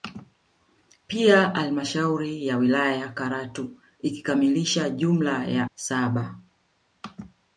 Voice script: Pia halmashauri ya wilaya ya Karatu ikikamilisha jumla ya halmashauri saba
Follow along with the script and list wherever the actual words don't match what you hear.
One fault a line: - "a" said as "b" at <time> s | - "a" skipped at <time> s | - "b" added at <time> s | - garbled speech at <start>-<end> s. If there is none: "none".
- "halmashauri" skipped at 5.7 s